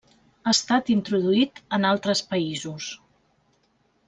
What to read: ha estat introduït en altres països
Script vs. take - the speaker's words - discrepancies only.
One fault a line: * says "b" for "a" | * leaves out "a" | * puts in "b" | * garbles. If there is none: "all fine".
all fine